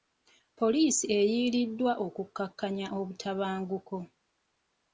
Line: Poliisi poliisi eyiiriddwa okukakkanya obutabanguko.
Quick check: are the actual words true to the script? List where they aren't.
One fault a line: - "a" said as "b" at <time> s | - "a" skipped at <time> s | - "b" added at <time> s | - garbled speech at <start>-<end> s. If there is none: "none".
- "poliisi" skipped at 1.1 s